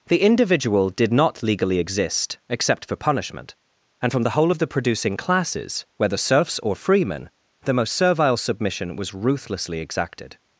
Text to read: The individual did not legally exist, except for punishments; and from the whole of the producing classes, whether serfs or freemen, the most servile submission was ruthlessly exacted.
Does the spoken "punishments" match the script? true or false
false